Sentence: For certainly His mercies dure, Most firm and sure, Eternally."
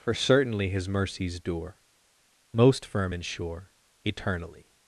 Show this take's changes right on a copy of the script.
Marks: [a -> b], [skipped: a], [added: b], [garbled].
For certainly His mercies dure, Most firm and sure, Eternally."